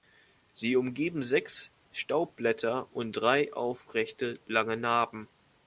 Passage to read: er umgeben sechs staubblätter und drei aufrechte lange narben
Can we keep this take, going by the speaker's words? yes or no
no